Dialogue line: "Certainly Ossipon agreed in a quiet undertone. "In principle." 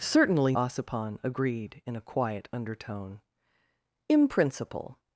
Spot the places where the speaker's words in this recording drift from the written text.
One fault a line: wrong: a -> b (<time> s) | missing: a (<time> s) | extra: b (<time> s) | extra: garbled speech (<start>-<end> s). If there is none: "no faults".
no faults